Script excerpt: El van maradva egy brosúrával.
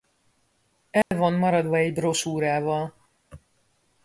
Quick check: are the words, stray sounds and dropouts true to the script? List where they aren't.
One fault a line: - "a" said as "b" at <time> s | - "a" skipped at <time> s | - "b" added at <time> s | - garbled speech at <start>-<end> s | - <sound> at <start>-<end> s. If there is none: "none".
- dropout at 1.0-1.1 s